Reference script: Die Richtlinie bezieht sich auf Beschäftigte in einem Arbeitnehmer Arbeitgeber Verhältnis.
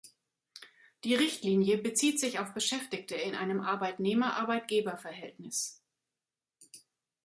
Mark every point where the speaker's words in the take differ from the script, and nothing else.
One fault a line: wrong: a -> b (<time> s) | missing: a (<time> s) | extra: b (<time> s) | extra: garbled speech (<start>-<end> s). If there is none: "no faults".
no faults